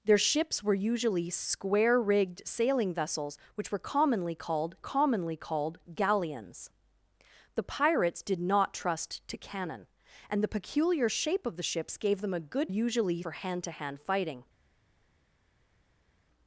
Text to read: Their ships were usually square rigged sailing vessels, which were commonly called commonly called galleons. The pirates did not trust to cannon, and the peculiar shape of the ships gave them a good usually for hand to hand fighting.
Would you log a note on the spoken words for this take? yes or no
no